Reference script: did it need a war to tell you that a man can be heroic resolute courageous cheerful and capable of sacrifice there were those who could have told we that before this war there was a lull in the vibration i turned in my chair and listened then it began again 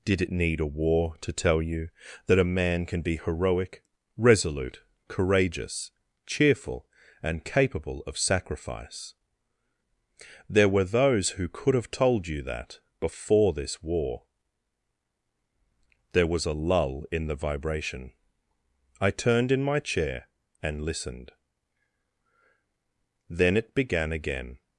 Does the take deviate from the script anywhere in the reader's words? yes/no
yes